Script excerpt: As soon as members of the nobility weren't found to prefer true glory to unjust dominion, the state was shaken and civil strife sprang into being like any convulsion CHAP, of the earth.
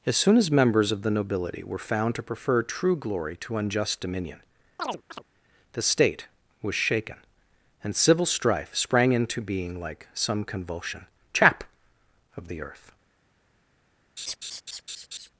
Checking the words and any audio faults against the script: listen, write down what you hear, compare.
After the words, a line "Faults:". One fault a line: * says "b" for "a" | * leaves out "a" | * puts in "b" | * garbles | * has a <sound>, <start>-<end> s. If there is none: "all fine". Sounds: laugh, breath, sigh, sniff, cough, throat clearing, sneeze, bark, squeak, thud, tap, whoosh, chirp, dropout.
As soon as members of the nobility were found to prefer true glory to unjust dominion, the state was shaken and civil strife sprang into being like some convulsion CHAP, of the earth.
Faults:
* says "were" for "weren't"
* has a chirp, 4.8-5.2 s
* says "some" for "any"
* has a laugh, 14.2-15.3 s